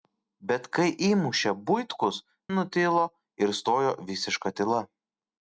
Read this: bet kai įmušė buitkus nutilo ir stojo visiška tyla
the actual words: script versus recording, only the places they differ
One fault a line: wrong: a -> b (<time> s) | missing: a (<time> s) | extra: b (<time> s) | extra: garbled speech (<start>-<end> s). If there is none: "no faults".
no faults